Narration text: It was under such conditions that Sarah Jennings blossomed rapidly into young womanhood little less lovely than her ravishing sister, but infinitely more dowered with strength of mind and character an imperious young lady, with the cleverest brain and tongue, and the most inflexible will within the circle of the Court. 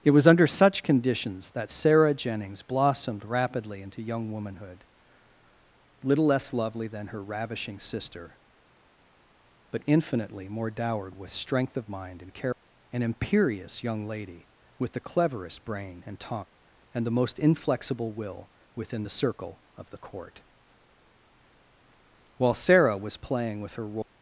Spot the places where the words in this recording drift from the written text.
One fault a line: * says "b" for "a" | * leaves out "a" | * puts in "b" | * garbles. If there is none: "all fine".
* puts in "While Sarah was playing with her Royal"